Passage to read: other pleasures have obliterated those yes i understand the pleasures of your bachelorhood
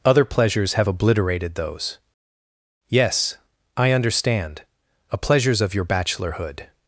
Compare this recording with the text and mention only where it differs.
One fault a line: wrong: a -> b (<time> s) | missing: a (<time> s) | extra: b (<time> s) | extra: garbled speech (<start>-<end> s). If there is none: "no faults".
wrong: the -> a (5.1 s)